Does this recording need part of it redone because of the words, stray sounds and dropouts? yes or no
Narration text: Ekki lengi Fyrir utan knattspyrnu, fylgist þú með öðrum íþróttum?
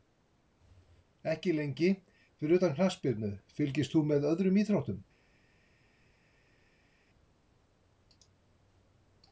no